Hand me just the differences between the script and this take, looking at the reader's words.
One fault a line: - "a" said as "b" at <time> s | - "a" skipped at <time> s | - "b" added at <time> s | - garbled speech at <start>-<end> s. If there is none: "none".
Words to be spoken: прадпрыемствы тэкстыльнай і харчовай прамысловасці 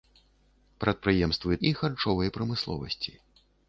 - "тэкстыльнай" skipped at 1.6 s